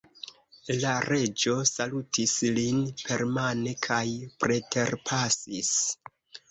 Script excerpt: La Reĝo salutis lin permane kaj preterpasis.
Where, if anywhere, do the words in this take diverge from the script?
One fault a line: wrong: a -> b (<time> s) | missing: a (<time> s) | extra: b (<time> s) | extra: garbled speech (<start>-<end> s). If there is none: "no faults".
no faults